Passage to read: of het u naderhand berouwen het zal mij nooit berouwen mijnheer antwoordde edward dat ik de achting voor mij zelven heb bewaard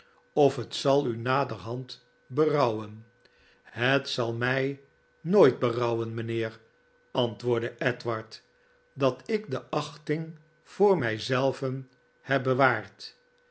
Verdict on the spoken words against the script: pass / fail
fail